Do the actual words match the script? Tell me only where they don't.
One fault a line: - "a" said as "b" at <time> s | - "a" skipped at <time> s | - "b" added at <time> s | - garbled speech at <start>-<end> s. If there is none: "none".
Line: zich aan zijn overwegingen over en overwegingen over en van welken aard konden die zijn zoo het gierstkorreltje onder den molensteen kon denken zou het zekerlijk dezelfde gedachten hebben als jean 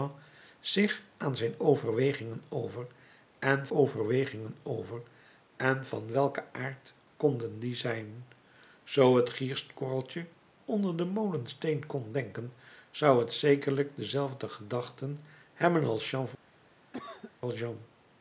none